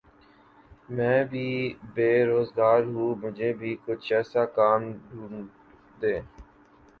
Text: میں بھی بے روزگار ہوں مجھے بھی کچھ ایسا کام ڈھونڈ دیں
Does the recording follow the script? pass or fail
pass